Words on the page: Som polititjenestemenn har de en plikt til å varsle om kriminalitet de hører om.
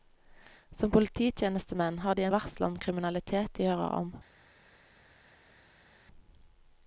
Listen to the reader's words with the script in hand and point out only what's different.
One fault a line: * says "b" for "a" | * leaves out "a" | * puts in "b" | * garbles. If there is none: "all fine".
* leaves out "en plikt til"